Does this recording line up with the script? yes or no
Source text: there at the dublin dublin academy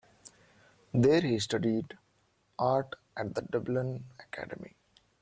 no